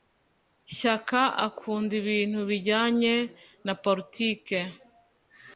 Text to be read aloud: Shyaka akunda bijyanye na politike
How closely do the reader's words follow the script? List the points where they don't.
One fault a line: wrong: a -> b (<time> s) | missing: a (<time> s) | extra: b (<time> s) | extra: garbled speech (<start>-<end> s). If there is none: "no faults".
extra: ibintu (2.0 s)